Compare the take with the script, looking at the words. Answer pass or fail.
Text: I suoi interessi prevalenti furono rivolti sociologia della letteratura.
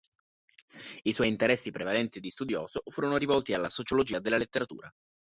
fail